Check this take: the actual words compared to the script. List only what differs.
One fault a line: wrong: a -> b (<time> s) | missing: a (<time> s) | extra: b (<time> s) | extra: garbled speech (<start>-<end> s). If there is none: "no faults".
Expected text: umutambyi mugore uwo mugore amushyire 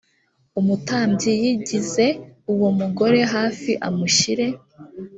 wrong: mugore -> yigize (1.4 s)
extra: hafi (3.3 s)